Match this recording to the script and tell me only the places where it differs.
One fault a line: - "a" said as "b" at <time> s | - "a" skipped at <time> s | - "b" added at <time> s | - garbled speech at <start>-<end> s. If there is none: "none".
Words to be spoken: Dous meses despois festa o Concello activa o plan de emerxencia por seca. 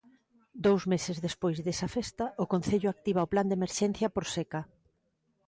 - "desa" added at 1.6 s